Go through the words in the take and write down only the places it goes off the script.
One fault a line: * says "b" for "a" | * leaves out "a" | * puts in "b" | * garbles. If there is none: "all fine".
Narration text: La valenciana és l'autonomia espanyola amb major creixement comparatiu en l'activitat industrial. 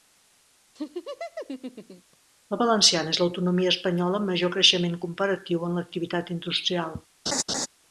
all fine